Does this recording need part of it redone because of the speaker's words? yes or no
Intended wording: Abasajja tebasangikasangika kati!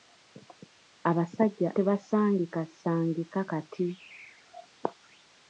no